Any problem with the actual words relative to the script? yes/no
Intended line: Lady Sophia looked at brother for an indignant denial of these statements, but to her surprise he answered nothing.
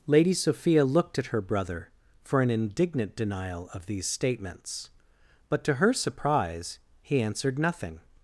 yes